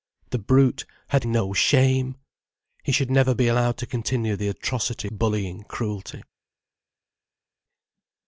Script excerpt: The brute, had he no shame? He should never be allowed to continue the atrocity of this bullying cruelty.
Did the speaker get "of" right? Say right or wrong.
wrong